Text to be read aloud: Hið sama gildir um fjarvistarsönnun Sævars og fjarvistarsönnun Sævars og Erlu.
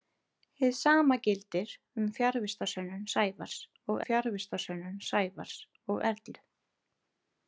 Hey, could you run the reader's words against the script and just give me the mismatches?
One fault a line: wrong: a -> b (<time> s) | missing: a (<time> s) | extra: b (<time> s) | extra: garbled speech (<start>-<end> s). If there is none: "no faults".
no faults